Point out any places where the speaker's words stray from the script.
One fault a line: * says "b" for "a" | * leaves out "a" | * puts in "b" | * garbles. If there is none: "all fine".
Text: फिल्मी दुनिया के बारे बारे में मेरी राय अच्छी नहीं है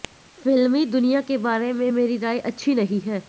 * leaves out "बारे"